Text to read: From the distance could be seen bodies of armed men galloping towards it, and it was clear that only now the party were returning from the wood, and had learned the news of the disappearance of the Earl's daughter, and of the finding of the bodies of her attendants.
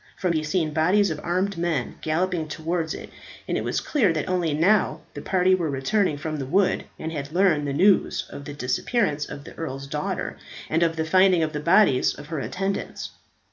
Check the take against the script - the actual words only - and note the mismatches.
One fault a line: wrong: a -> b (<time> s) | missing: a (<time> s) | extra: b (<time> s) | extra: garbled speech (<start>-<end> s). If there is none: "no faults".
missing: the distance could (0.3 s)